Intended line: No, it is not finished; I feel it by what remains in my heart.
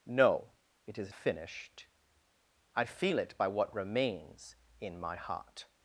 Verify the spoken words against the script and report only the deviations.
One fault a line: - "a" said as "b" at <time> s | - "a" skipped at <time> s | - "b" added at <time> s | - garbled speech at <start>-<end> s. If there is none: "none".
- "not" skipped at 1.1 s